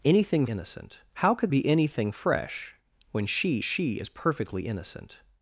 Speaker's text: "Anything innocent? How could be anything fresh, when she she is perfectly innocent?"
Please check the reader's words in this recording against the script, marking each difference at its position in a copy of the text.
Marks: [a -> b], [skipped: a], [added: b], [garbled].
"Anything innocent? How could be anything fresh, when she she is perfectly innocent?"